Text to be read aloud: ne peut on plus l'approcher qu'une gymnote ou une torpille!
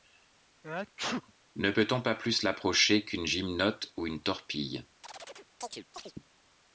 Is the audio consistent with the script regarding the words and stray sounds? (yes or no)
no